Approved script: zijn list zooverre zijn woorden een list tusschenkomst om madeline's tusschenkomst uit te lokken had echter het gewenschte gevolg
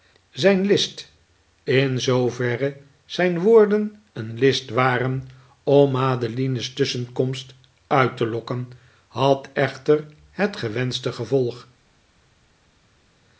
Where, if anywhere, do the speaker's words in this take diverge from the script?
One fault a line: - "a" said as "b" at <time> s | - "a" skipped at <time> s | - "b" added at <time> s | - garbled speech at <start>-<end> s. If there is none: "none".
- "in" added at 1.6 s
- "tusschenkomst" said as "waren" at 4.7 s